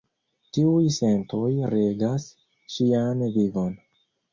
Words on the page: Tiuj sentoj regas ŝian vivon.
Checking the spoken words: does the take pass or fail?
pass